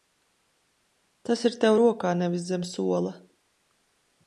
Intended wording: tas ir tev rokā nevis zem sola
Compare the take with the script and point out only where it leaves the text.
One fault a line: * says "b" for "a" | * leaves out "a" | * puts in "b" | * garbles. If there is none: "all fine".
all fine